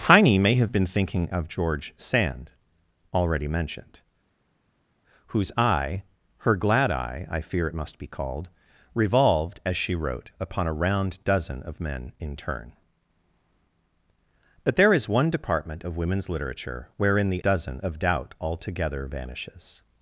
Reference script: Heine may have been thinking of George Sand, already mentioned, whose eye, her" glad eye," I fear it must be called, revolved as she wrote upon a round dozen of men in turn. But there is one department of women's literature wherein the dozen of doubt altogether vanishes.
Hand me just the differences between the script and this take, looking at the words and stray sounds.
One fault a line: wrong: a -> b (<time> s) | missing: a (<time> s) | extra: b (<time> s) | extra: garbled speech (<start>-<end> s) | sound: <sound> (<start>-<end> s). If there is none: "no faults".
no faults